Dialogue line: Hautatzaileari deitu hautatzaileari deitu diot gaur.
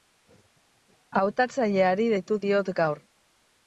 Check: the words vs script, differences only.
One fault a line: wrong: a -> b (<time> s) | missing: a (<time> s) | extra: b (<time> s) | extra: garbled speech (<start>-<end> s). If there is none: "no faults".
missing: hautatzaileari deitu (2.4 s)